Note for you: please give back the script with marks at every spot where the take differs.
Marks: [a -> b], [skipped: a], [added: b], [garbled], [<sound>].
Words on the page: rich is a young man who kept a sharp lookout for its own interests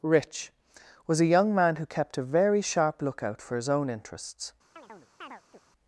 rich [is -> was] a young man who kept a [added: very] sharp lookout for [its -> his] own interests [chirp]